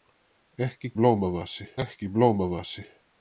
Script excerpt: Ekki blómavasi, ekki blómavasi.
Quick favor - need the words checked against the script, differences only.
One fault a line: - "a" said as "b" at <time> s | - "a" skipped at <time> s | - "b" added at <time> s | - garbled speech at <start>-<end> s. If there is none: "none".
none